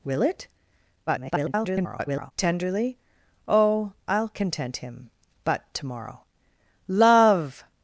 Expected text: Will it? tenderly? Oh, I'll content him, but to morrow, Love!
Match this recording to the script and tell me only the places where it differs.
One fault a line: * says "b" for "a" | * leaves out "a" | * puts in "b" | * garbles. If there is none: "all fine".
* garbles